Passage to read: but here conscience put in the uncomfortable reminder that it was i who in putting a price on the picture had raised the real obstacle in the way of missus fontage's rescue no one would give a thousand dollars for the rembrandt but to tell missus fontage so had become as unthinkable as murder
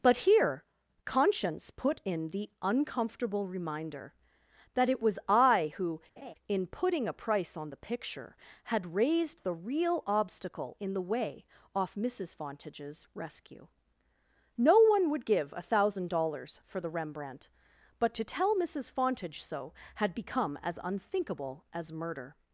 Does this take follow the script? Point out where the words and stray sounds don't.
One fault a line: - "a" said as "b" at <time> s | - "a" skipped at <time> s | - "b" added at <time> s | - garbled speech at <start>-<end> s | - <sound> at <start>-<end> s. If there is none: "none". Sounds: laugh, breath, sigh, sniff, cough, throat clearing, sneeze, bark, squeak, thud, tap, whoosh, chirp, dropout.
- laugh at 6.2-6.3 s
- "of" said as "off" at 11.7 s